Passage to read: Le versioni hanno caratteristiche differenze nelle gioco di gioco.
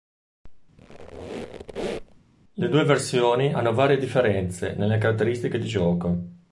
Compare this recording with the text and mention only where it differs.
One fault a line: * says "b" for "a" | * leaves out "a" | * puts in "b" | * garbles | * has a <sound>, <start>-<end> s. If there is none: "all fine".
* has a squeak, 0.8-2.2 s
* puts in "due"
* says "varie" for "caratteristiche"
* says "caratteristiche" for "gioco"